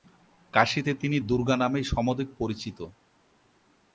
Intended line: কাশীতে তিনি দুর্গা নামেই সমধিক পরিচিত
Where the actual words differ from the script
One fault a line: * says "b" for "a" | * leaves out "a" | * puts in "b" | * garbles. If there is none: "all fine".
all fine